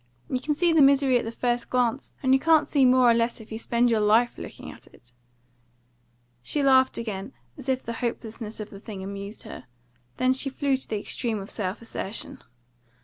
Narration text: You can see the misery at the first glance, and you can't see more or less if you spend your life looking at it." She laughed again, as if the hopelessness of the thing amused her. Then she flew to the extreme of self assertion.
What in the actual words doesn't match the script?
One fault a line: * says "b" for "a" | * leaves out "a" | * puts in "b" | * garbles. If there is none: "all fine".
all fine